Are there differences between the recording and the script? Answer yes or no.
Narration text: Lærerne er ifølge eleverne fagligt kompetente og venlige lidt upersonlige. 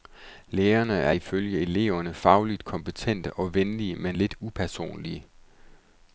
yes